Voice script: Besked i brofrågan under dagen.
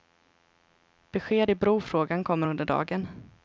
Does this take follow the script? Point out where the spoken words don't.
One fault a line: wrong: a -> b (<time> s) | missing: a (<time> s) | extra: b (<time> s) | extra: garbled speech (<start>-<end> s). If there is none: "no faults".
extra: kommer (2.2 s)